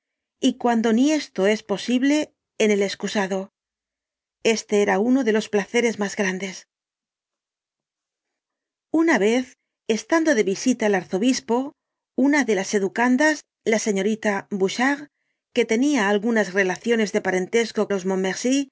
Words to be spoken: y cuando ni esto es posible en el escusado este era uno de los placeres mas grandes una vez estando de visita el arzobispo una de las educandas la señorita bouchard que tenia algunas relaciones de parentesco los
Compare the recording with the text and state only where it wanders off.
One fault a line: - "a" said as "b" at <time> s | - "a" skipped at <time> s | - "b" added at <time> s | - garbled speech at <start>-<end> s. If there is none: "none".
none